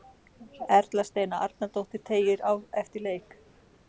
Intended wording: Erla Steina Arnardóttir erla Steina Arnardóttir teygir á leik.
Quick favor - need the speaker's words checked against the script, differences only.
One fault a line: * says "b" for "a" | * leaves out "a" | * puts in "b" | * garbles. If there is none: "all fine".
* leaves out "erla Steina Arnardóttir"
* puts in "eftir"